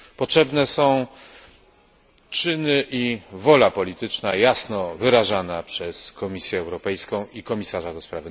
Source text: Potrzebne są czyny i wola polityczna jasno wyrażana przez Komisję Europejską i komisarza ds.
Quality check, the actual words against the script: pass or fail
pass